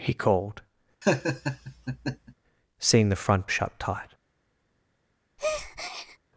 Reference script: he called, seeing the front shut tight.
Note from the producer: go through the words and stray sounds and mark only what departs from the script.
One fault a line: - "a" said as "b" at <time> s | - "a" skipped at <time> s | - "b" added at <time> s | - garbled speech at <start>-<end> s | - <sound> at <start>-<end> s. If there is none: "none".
- laugh at 1.0-2.3 s
- breath at 5.4-6.2 s